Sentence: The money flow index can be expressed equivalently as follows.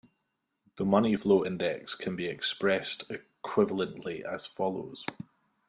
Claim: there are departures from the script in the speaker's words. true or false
false